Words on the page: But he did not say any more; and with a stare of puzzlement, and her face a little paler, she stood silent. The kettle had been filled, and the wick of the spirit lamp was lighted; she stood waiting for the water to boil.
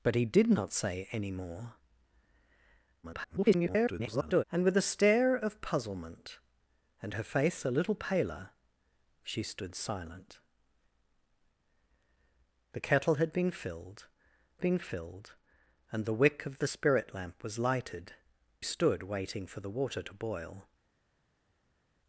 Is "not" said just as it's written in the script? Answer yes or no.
yes